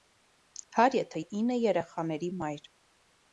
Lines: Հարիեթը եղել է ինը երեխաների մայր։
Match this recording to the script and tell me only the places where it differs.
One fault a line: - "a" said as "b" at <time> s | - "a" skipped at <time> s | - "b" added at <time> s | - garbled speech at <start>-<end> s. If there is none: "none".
- "եղել" skipped at 1.2 s